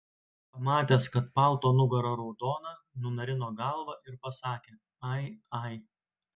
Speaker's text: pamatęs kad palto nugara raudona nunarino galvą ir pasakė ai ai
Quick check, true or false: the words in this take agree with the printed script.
true